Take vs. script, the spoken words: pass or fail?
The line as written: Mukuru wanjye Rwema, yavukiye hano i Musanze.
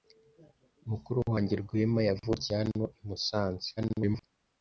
fail